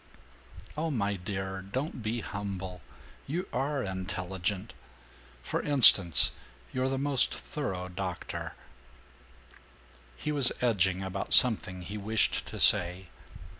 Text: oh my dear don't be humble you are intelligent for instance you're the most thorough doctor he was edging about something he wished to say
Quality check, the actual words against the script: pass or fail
pass